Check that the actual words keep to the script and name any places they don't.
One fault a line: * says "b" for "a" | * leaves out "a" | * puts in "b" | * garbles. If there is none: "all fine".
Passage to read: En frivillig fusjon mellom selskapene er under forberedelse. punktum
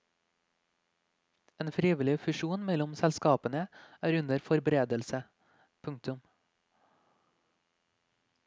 all fine